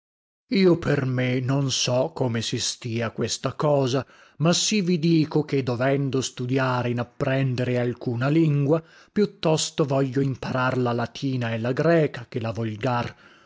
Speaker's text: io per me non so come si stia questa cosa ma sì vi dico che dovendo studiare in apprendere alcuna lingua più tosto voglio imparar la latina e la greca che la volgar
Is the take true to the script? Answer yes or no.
yes